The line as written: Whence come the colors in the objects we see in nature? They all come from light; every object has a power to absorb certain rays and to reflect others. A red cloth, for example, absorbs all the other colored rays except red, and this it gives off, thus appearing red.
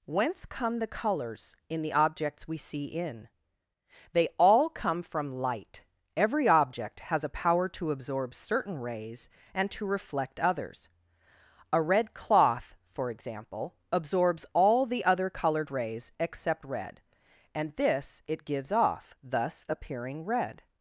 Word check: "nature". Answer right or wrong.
wrong